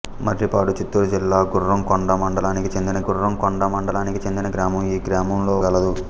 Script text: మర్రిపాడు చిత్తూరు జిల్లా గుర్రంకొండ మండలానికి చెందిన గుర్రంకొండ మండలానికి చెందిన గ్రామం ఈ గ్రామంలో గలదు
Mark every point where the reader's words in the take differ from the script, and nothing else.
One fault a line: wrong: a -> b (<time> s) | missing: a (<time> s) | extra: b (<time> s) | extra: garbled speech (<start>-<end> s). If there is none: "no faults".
no faults